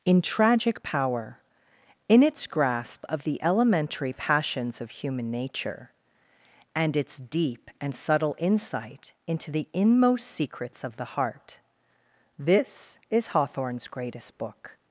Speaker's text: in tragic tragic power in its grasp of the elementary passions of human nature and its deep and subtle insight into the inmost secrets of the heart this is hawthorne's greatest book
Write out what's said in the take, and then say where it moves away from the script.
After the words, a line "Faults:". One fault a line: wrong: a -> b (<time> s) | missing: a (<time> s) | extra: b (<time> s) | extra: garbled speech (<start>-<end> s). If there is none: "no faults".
in tragic power in its grasp of the elementary passions of human nature and its deep and subtle insight into the inmost secrets of the heart this is hawthorne's greatest book
Faults:
missing: tragic (0.8 s)